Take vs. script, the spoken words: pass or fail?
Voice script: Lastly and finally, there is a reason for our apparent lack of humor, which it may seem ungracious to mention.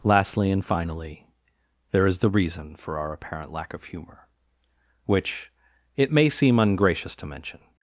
fail